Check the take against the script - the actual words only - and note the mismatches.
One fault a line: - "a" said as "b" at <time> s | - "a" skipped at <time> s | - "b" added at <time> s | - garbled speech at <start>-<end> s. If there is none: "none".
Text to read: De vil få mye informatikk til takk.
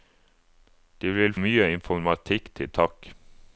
- "få" skipped at 1.3 s